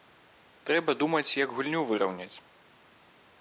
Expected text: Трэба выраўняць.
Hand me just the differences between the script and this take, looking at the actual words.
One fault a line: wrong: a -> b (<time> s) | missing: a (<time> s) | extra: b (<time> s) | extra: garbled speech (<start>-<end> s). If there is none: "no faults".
extra: думаць як гульню (1.0 s)